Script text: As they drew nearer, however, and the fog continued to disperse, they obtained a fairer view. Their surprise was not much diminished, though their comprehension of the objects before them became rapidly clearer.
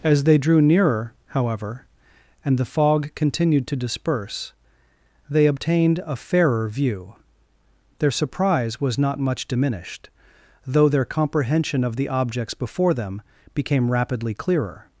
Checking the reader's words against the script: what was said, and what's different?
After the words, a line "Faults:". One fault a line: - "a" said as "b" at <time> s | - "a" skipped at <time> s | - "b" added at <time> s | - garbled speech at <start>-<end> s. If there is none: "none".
As they drew nearer, however, and the fog continued to disperse, they obtained a fairer view. Their surprise was not much diminished, though their comprehension of the objects before them became rapidly clearer.
Faults:
none